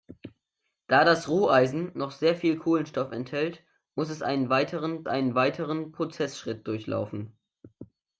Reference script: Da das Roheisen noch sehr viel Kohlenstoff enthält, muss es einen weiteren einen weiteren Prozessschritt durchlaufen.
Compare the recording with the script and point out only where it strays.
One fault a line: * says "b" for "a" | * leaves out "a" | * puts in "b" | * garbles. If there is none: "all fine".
all fine